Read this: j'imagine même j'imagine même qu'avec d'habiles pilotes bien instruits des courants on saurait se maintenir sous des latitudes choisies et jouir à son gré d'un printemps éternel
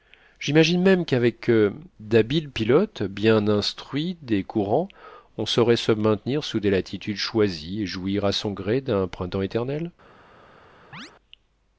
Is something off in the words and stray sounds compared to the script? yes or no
yes